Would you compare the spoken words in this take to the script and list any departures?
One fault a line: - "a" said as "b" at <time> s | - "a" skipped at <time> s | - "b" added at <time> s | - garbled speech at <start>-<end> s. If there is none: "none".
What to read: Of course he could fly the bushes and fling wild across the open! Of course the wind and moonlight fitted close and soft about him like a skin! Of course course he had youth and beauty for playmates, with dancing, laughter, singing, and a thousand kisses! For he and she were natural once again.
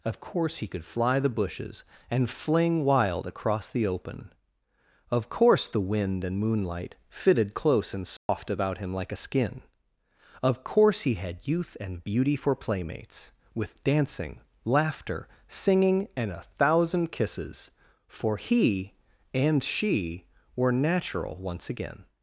- "course" skipped at 11.0 s